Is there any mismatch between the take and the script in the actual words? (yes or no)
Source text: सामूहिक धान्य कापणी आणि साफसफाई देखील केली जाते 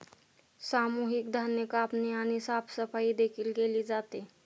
no